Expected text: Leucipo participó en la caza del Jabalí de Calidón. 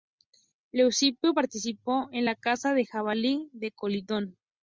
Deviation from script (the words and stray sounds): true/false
false